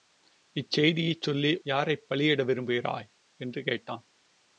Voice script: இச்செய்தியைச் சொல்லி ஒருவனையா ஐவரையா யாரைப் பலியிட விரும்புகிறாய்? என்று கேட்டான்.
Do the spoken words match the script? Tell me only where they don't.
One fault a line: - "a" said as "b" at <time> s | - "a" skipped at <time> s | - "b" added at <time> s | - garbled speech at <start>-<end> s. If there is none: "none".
- "ஒருவனையா ஐவரையா" skipped at 1.6 s